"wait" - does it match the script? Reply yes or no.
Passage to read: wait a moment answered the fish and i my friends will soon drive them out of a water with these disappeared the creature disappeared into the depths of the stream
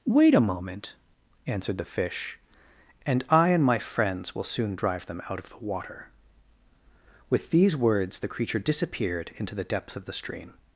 yes